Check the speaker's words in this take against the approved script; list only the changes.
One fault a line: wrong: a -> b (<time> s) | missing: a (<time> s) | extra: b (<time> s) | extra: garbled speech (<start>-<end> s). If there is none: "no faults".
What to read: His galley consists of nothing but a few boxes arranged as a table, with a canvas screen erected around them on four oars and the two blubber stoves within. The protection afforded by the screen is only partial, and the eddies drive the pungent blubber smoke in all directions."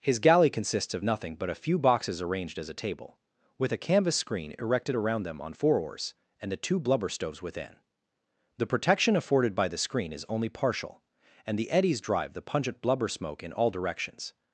no faults